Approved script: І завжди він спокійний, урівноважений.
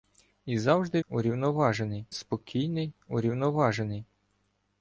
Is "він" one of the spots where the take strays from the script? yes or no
yes